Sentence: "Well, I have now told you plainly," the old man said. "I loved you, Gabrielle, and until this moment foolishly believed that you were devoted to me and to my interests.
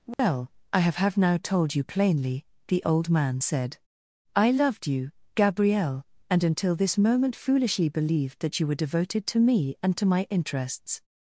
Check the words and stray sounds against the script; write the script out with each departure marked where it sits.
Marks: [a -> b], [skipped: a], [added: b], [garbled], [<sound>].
"Well, [dropout] I have [added: have] now told you plainly," the old man said. "I loved you, Gabrielle, and until this moment foolishly believed that you were devoted to me and to my interests.